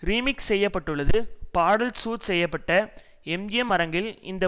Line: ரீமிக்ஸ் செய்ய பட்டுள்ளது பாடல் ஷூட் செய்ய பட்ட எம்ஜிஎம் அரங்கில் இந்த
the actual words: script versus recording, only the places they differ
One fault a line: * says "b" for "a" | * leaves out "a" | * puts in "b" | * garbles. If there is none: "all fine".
all fine